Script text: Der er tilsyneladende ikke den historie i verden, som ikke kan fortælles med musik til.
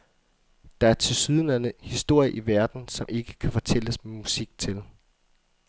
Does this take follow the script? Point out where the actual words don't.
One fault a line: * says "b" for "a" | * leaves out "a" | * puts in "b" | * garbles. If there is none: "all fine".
* leaves out "ikke den"